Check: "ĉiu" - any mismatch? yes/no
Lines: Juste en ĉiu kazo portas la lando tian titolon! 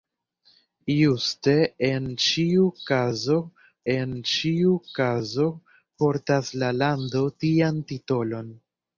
no